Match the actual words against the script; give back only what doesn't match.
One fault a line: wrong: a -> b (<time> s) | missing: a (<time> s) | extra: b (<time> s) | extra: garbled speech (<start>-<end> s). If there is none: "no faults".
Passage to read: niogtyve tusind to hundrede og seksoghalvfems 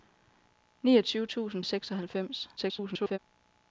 missing: to hundrede (1.6 s)
extra: garbled speech (2.6-3.2 s)